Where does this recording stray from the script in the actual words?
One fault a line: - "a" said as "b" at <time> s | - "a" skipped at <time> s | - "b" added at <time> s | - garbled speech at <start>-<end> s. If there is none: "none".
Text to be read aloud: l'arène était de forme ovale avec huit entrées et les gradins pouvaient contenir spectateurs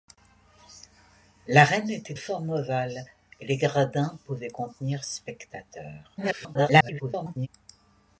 - "de" skipped at 2.1 s
- "avec huit entrées" skipped at 3.1 s
- garbled speech at 6.2-7.5 s